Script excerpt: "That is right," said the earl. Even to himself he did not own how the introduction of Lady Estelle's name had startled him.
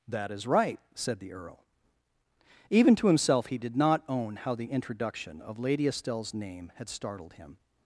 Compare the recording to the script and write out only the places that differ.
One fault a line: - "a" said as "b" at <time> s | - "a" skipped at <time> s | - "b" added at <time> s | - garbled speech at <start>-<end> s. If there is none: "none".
none